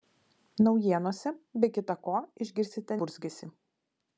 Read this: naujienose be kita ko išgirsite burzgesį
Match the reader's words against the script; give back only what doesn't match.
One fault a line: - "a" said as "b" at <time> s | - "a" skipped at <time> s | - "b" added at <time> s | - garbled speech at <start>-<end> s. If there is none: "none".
none